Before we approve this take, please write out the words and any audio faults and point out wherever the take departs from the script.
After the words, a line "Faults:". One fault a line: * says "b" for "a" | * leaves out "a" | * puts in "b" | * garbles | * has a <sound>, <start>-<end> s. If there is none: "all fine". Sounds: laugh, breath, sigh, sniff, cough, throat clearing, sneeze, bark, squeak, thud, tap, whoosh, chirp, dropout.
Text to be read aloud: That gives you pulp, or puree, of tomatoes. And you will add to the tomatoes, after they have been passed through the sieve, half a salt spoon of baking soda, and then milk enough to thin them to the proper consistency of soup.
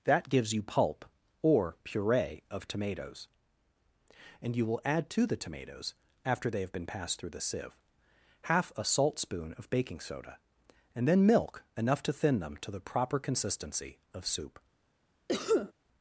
That gives you pulp, or puree, of tomatoes. And you will add to the tomatoes, after they have been passed through the sieve, half a salt spoon of baking soda, and then milk enough to thin them to the proper consistency of soup.
Faults:
* has a cough, 15.3-15.7 s